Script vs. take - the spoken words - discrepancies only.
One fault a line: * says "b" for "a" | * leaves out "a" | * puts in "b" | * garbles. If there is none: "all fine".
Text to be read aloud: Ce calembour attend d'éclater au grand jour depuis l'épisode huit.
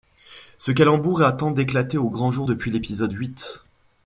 all fine